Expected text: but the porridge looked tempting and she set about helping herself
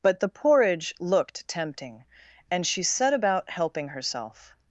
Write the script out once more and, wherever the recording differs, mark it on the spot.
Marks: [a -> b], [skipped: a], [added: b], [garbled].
but the porridge looked tempting and she set about helping herself